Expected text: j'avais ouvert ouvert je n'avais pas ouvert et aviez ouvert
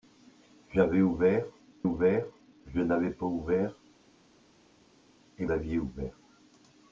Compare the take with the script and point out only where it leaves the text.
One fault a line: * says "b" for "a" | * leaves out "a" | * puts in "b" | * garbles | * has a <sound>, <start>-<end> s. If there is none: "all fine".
all fine